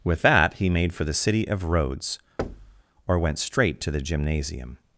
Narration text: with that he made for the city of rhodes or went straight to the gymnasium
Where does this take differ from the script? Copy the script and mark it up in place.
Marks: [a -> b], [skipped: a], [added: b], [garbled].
with that he made for the city of rhodes or went straight to the gymnasium